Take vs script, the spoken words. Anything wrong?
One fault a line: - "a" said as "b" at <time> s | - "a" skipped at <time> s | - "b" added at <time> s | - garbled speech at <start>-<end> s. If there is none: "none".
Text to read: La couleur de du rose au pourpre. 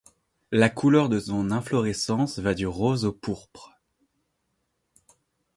- "son inflorescence va" added at 1.2 s